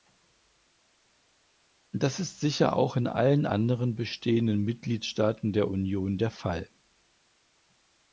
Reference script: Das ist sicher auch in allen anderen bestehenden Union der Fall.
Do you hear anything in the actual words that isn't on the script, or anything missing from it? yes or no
yes